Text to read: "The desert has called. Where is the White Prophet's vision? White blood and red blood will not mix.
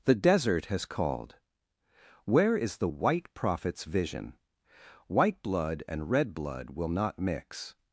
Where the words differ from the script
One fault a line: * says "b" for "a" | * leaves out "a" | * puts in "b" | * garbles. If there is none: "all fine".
all fine